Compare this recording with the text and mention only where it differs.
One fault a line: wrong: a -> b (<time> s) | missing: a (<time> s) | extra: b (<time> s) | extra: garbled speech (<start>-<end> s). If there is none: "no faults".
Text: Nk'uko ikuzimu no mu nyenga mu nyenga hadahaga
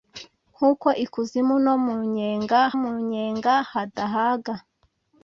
no faults